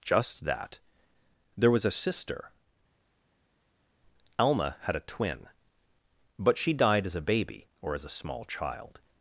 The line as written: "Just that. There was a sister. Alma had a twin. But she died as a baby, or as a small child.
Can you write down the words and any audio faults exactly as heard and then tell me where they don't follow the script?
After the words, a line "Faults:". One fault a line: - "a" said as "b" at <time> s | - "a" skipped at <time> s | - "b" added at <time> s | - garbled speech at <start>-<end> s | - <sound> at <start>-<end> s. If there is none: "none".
"Just that. There was a sister. Alma had a twin. But she died as a baby, or as a small child.
Faults:
none